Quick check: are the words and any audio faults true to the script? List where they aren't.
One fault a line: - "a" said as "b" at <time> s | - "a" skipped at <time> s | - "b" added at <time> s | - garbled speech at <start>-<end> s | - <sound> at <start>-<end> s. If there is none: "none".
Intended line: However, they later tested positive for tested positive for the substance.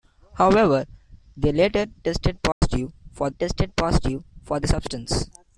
- dropout at 2.5-2.6 s